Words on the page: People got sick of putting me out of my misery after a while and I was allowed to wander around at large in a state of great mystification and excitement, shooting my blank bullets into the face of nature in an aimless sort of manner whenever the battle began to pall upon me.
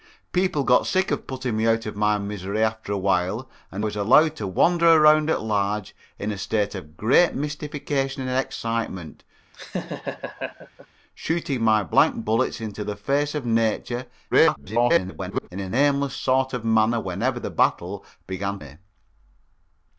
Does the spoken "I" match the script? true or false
false